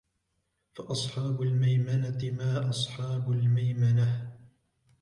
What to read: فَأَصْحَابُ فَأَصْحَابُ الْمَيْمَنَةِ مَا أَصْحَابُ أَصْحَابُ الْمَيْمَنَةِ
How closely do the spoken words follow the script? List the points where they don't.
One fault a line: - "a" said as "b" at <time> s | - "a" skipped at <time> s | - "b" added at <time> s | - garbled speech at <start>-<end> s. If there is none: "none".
- "فَأَصْحَابُ" skipped at 1.4 s
- "أَصْحَابُ" skipped at 3.3 s